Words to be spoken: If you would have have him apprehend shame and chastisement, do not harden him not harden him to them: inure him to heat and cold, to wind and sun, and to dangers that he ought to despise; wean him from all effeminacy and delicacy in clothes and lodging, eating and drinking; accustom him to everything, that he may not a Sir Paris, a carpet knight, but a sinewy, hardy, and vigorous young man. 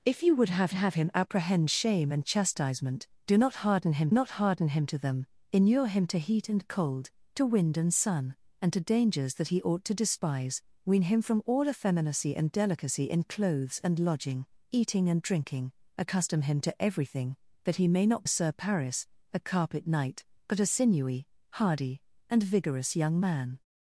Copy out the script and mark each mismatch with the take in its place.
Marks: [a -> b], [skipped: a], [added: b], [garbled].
If you would have have him apprehend shame and chastisement, do not harden him not harden him to them: inure him to heat and cold, to wind and sun, and to dangers that he ought to despise; wean him from all effeminacy and delicacy in clothes and lodging, eating and drinking; accustom him to everything, that he may not a Sir Paris, a carpet knight, but a sinewy, hardy, and vigorous young man.